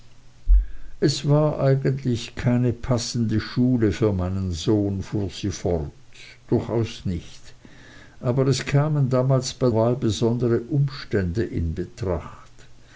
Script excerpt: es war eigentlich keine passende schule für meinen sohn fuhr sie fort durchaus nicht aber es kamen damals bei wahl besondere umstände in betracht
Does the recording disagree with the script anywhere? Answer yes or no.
no